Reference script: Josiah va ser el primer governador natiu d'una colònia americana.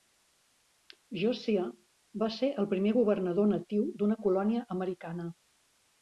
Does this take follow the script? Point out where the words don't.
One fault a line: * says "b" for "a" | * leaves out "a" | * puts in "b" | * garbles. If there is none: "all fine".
all fine